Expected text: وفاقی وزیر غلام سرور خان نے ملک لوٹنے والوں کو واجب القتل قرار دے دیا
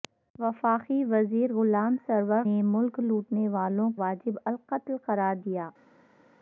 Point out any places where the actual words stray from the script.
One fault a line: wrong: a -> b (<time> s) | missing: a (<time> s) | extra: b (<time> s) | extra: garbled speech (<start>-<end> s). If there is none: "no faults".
missing: خان (2.4 s)
missing: کو (3.9 s)
missing: دے (5.3 s)